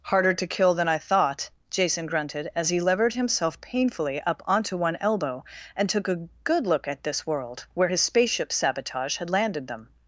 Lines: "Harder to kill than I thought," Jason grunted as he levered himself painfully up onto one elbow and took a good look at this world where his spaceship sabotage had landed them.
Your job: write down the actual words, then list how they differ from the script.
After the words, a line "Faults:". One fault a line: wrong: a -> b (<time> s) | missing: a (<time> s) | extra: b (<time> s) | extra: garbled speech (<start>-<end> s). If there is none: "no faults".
"Harder to kill than I thought," Jason grunted as he levered himself painfully up onto one elbow and took a good look at this world where his spaceship sabotage had landed them.
Faults:
no faults